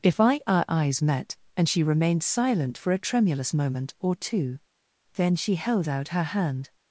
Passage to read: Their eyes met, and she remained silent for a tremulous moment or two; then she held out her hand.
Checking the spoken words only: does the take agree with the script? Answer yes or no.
no